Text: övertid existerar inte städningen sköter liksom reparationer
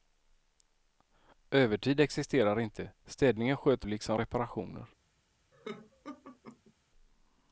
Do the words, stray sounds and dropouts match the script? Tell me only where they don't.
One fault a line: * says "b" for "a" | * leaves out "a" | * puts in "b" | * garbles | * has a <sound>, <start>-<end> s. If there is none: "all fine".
* has a laugh, 5.5-6.7 s